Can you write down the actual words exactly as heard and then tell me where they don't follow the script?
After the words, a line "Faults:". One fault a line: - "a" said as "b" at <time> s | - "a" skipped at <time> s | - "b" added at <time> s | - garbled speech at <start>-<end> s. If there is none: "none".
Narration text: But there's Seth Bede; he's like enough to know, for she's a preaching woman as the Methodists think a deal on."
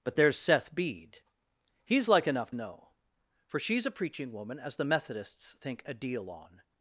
But there's Seth Bede; he's like enough know, for she's a preaching woman as the Methodists think a deal on."
Faults:
- "to" skipped at 2.5 s